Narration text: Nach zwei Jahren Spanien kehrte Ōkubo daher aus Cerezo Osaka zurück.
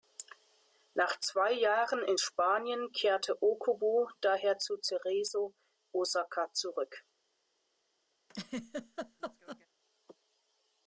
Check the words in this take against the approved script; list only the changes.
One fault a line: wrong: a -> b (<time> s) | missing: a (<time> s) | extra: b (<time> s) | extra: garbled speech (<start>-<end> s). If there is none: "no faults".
extra: in (2.0 s)
wrong: aus -> zu (4.6 s)